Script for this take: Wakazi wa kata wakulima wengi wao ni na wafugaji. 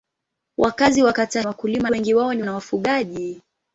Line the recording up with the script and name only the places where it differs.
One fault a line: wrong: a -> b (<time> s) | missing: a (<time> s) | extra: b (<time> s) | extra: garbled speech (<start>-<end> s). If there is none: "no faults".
no faults